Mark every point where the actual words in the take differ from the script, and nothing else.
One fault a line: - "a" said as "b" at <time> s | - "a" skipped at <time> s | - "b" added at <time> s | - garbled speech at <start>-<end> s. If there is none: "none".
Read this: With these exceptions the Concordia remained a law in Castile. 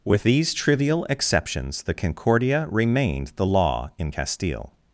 - "trivial" added at 0.5 s
- "a" said as "the" at 3.3 s